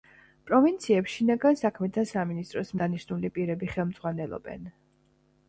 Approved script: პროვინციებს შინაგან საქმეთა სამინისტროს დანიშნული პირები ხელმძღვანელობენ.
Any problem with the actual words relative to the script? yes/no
no